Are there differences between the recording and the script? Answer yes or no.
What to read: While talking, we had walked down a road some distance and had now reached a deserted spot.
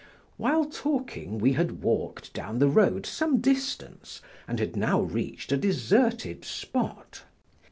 yes